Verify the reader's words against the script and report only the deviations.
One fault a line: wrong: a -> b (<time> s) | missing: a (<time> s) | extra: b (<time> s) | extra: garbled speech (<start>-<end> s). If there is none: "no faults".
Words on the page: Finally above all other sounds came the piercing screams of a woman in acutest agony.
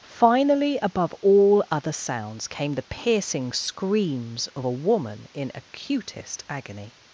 no faults